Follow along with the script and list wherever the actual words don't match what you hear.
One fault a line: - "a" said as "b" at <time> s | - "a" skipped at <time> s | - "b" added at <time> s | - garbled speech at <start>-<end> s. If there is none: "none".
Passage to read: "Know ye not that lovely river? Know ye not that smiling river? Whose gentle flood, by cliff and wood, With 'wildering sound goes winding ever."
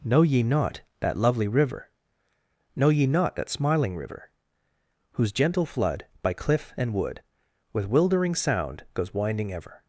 none